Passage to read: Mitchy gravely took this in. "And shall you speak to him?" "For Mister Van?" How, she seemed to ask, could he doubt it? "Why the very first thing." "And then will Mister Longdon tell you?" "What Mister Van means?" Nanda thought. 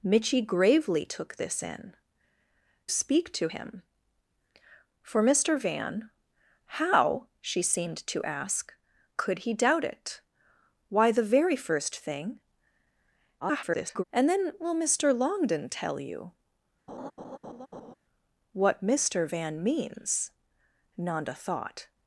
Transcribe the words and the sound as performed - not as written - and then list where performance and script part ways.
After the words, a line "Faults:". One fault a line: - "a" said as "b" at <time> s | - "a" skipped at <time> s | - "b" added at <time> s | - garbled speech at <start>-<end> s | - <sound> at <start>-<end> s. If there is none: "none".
Mitchy gravely took this in. "Speak to him?" "For Mister Van?" How, she seemed to ask, could he doubt it? "Why the very first thing." [garbled] "And then will Mister Longdon tell you?" "What Mister Van means?" Nanda thought.
Faults:
- "And shall you" skipped at 1.9 s
- garbled speech at 13.4-14.0 s
- laugh at 16.9-17.9 s